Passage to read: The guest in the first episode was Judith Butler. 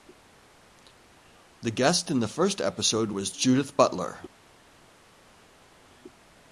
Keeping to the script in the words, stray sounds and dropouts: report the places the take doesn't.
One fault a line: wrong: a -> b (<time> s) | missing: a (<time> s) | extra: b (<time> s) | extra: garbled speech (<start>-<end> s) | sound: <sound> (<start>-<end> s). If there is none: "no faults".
no faults